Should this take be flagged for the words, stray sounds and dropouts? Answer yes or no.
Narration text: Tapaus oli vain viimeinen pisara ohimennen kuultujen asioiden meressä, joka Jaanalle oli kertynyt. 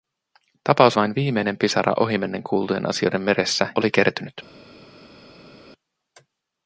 yes